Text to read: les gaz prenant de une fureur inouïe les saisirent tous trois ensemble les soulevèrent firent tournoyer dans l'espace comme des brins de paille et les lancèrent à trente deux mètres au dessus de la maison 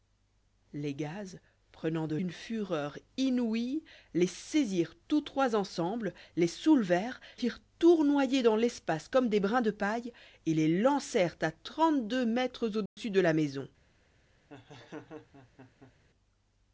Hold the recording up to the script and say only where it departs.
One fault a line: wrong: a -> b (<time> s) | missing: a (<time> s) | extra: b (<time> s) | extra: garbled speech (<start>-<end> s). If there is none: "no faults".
no faults